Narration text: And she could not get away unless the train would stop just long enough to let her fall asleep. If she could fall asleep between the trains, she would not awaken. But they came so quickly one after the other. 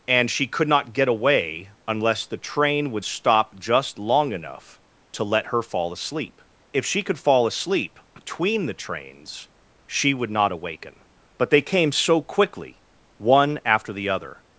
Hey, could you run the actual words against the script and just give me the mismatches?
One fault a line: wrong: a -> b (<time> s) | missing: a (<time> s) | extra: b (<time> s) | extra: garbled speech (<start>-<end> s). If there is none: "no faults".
no faults